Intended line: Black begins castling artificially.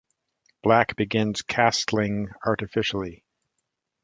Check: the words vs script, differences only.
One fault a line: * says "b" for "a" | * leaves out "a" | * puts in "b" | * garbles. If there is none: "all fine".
all fine